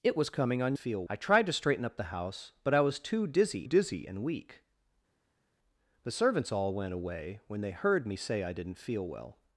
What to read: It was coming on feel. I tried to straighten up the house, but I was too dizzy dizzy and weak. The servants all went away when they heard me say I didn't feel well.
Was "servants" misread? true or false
false